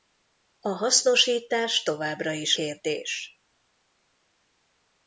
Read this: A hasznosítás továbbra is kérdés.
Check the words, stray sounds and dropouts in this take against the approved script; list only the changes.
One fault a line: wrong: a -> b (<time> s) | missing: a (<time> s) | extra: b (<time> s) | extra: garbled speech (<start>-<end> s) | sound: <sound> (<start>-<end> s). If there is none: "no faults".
no faults